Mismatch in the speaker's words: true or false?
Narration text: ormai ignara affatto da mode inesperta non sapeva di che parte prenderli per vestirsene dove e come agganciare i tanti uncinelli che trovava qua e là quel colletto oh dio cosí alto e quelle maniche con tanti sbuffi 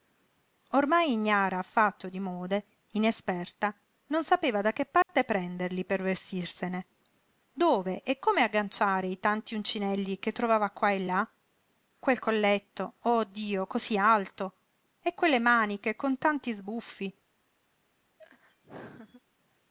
true